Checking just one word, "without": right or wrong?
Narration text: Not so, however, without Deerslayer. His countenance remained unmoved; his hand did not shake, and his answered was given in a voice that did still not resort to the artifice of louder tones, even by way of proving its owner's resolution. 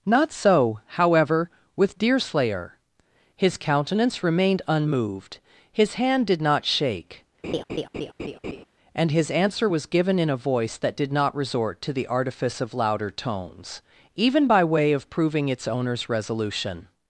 wrong